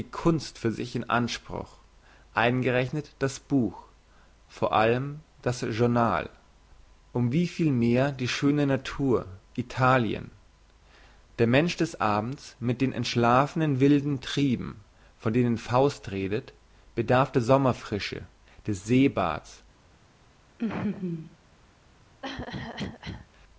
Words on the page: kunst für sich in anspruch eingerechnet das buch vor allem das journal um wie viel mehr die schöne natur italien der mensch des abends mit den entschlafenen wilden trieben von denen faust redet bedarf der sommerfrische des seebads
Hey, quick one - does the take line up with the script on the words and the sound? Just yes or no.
no